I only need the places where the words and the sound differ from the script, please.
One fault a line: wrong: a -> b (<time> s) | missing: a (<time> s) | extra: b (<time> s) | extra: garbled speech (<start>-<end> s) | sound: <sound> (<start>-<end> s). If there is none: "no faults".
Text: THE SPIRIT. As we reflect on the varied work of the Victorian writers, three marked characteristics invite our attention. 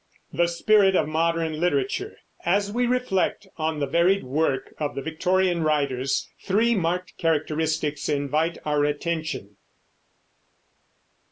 extra: OF MODERN LITERATURE (0.9 s)